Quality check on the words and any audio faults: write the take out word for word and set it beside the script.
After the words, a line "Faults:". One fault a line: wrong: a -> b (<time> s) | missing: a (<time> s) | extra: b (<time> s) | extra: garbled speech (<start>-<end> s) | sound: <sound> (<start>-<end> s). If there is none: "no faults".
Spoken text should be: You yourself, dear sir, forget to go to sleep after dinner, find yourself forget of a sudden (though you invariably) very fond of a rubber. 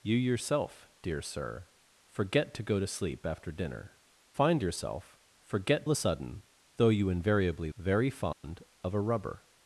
You yourself, dear sir, forget to go to sleep after dinner, find yourself forget of a sudden (though you invariably) very fond of a rubber.
Faults:
sound: dropout (8.3-8.4 s)